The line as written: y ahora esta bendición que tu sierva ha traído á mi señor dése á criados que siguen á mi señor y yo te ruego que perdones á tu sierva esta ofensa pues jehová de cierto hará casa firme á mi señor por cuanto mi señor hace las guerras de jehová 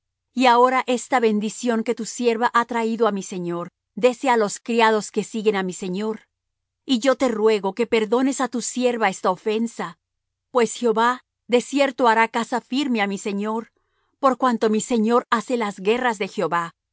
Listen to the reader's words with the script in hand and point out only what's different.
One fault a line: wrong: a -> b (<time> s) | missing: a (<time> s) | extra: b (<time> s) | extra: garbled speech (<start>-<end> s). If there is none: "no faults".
extra: los (4.4 s)